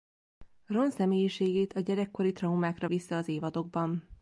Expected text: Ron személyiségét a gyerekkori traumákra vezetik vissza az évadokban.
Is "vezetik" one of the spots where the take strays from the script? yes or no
yes